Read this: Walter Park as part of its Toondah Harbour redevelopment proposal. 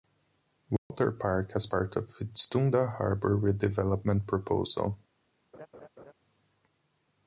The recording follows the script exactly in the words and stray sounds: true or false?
false